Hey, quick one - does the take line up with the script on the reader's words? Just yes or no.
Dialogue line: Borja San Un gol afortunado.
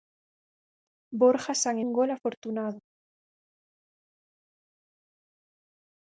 yes